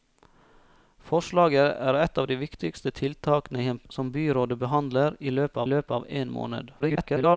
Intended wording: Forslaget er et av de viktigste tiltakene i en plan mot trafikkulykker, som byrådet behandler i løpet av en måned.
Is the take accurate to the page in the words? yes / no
no